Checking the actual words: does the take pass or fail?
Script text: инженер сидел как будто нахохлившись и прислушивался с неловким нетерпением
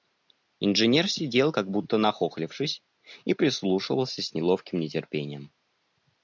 pass